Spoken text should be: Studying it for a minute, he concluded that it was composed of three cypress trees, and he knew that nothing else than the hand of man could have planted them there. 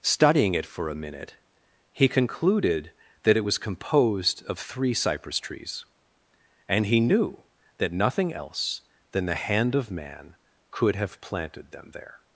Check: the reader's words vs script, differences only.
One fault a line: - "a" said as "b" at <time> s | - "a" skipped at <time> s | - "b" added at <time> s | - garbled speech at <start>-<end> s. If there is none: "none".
none